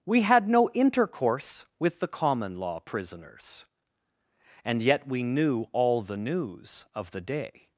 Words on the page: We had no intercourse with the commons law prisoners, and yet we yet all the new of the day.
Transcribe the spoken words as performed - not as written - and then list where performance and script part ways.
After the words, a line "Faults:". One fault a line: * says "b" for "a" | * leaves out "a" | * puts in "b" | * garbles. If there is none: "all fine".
We had no intercourse with the common law prisoners, and yet we knew all the news of the day.
Faults:
* says "common" for "commons"
* says "knew" for "yet"
* says "news" for "new"